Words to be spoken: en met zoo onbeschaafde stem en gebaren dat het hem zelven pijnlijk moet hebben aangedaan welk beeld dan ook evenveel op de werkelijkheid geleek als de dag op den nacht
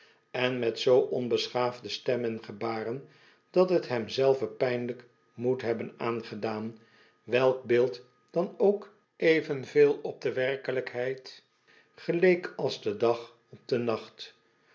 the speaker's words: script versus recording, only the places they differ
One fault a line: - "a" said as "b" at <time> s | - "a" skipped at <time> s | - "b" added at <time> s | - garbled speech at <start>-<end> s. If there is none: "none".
none